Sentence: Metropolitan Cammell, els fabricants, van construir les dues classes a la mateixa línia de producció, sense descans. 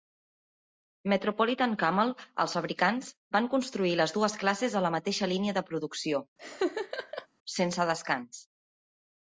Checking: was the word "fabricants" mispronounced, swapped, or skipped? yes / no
no